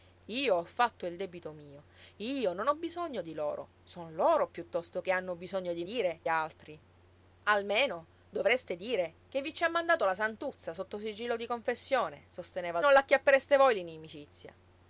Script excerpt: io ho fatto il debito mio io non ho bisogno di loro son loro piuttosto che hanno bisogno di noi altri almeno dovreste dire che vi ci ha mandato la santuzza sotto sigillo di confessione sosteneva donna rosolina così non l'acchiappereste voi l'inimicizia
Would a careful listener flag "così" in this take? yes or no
yes